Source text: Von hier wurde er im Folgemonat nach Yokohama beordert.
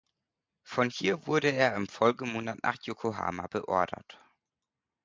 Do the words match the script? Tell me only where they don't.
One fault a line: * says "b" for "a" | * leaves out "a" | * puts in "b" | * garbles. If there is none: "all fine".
all fine